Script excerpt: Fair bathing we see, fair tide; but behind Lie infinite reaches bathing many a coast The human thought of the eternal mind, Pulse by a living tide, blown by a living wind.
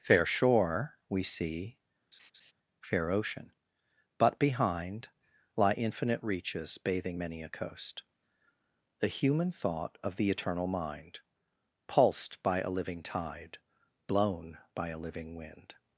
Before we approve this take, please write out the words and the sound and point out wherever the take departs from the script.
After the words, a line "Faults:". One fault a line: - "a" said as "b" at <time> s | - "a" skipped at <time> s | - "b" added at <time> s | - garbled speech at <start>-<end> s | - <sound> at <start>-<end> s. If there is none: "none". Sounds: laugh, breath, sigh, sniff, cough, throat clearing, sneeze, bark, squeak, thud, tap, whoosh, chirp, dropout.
Fair shore we see, fair ocean; but behind Lie infinite reaches bathing many a coast The human thought of the eternal mind, Pulsed by a living tide, blown by a living wind.
Faults:
- "bathing" said as "shore" at 0.2 s
- laugh at 2.1-2.5 s
- "tide" said as "ocean" at 3.1 s
- "Pulse" said as "Pulsed" at 11.9 s